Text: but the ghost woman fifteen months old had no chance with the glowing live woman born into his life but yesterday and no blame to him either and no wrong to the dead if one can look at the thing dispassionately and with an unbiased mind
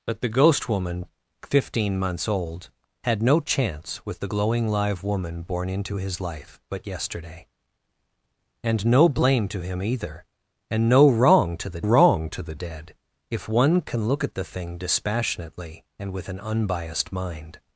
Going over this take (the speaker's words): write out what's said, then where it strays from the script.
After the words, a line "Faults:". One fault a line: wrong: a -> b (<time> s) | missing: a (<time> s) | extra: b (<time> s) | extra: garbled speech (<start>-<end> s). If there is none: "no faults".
but the ghost woman fifteen months old had no chance with the glowing live woman born into his life but yesterday and no blame to him either and no wrong to the wrong to the dead if one can look at the thing dispassionately and with an unbiased mind
Faults:
extra: wrong to the (11.8 s)